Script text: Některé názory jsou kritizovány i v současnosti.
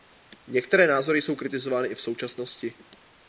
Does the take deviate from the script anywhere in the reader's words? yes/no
no